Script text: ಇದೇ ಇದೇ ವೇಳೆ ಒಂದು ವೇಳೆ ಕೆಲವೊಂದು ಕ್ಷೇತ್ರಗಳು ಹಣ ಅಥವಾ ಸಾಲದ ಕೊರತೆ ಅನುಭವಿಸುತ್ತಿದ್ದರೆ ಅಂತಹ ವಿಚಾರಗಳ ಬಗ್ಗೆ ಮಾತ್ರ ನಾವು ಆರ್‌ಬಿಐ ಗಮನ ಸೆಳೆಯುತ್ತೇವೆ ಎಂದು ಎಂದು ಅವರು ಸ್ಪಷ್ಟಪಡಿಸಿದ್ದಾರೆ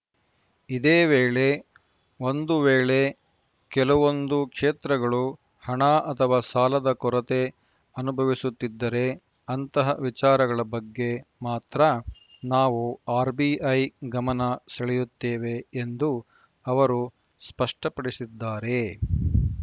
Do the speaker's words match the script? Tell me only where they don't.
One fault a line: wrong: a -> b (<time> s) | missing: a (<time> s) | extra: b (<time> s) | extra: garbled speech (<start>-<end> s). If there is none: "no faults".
missing: ಇದೇ (1.1 s)
missing: ಎಂದು (16.1 s)